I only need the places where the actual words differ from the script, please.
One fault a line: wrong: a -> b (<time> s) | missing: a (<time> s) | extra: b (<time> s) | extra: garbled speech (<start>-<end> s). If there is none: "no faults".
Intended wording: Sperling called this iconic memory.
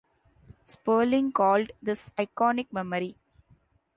no faults